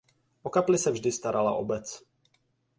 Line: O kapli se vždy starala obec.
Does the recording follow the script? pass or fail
pass